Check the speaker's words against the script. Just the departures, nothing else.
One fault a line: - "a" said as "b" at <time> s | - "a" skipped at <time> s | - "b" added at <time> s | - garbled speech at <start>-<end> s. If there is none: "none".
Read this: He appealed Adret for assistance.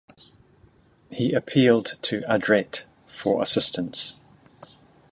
- "to" added at 2.0 s